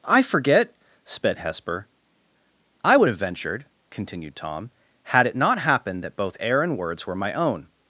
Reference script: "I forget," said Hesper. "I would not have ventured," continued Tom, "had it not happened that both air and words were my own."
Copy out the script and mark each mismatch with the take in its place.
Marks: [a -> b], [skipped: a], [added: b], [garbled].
"I forget," [said -> sped] Hesper. "I would [skipped: not] have ventured," continued Tom, "had it not happened that both air and words were my own."